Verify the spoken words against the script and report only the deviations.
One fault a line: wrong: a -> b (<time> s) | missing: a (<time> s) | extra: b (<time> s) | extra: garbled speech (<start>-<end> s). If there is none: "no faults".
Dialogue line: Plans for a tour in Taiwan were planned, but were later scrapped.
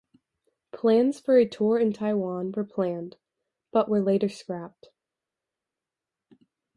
no faults